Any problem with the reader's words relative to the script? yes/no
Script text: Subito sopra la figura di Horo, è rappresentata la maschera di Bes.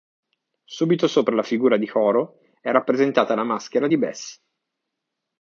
no